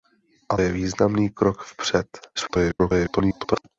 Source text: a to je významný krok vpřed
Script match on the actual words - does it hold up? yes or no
no